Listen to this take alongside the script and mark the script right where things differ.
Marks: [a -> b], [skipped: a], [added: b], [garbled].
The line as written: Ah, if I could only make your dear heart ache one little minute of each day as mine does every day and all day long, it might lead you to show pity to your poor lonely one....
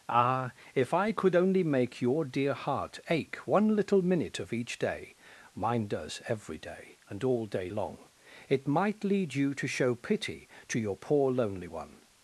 Ah, if I could only make your dear heart ache one little minute of each day [skipped: as] mine does every day and all day long, it might lead you to show pity to your poor lonely one....